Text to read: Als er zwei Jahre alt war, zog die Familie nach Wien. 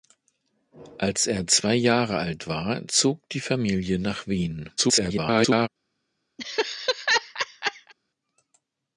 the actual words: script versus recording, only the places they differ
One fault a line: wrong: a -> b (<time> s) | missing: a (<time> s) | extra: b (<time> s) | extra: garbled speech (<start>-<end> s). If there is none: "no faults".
extra: garbled speech (4.8-5.7 s)